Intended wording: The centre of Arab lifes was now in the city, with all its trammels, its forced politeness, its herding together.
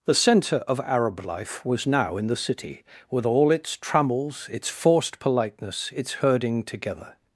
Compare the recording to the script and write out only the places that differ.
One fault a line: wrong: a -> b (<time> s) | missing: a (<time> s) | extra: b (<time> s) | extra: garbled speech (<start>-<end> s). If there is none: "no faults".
wrong: lifes -> life (1.2 s)